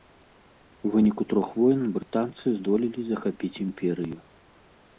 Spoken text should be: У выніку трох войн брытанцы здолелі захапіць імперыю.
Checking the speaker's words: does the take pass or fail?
pass